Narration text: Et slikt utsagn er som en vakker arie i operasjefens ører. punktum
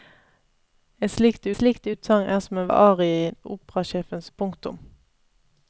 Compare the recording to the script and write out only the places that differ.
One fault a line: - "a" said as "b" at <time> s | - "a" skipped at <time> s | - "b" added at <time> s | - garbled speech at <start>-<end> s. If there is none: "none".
- "slikt" added at 1.5 s
- "vakker" skipped at 2.7 s
- "ører" skipped at 4.3 s